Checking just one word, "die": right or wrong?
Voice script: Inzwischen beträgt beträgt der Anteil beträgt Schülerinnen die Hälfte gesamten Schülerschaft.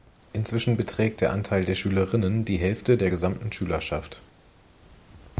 right